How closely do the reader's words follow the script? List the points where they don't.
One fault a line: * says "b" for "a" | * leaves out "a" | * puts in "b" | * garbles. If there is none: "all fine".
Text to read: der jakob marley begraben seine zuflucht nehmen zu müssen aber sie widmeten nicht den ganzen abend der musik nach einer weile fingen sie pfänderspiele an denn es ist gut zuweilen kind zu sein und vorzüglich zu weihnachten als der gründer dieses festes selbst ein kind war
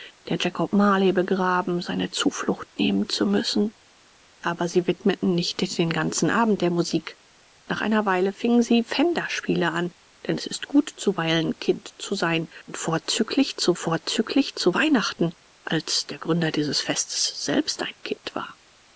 * puts in "vorzüglich zu"